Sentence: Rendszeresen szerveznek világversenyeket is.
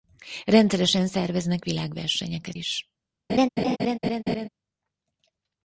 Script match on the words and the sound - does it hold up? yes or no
no